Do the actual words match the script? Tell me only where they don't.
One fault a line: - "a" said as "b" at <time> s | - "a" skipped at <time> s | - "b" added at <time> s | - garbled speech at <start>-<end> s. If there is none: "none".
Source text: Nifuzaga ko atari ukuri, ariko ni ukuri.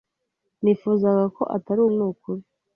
- "ukuri ariko" skipped at 1.8 s